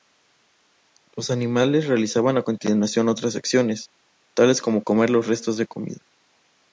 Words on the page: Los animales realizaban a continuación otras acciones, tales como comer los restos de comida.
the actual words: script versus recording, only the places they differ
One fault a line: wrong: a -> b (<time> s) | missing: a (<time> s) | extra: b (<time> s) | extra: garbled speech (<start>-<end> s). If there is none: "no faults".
no faults